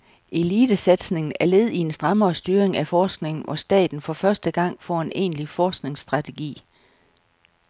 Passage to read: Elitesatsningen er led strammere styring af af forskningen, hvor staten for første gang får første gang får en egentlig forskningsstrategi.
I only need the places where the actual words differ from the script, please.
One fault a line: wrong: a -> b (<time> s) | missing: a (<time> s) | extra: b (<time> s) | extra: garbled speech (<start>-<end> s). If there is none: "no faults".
extra: i en (1.7 s)
missing: af (2.9 s)
missing: første gang får (5.0 s)